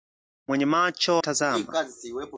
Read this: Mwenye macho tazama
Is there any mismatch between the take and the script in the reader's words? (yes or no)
no